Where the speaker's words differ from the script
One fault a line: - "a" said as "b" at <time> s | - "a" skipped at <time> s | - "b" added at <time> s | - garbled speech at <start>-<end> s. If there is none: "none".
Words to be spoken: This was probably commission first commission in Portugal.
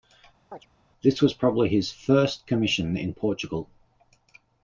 - "commission" said as "his" at 1.7 s